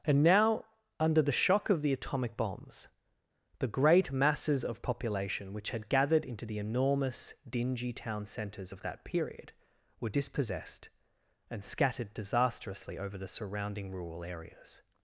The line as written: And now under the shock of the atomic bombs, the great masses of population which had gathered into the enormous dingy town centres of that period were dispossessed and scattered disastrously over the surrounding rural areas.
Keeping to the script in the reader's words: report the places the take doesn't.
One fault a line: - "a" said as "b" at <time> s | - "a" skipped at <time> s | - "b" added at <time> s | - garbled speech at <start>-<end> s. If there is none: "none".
none